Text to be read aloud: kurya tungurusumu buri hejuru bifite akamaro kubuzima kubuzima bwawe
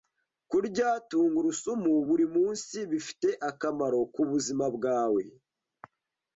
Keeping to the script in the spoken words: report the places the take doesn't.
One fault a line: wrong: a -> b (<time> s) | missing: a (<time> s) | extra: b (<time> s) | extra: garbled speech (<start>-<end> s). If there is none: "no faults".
wrong: hejuru -> munsi (2.3 s)
missing: kubuzima (4.6 s)